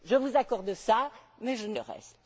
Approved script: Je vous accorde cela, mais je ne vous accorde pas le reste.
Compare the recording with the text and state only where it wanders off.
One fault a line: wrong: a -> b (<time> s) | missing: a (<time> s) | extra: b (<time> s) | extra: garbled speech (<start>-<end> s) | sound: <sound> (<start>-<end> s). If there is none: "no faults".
missing: vous accorde pas (1.7 s)